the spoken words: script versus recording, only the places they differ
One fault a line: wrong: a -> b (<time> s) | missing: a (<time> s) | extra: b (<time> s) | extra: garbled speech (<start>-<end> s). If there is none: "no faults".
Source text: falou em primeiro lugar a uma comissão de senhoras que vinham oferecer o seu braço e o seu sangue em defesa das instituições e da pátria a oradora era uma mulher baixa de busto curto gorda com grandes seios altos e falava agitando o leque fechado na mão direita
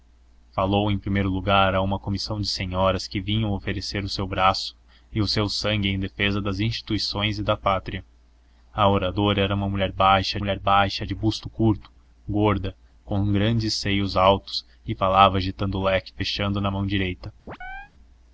extra: mulher baixa (10.4 s)